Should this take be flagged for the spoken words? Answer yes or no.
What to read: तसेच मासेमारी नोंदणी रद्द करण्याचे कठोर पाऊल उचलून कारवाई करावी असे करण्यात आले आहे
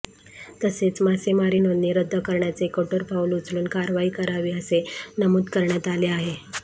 yes